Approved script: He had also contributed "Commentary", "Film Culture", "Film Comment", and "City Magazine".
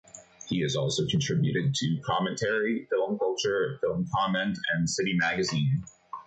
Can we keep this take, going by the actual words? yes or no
no